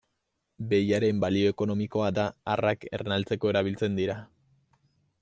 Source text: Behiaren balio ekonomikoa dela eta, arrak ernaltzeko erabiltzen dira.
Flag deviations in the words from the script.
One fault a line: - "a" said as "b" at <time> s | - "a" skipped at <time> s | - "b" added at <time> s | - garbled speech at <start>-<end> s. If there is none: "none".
- "dela" skipped at 2.1 s